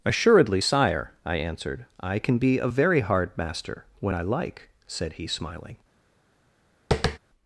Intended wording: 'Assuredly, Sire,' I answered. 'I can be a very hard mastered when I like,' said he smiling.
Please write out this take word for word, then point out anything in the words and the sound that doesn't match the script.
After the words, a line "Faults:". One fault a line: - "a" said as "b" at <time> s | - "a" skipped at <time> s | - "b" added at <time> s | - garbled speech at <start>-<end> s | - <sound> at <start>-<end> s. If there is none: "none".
'Assuredly, Sire,' I answered. 'I can be a very hard master when I like,' said he smiling.
Faults:
- "mastered" said as "master" at 3.4 s
- tap at 6.9-7.2 s